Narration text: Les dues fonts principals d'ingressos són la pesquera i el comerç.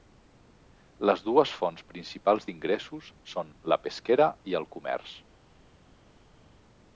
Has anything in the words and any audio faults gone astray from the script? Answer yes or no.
no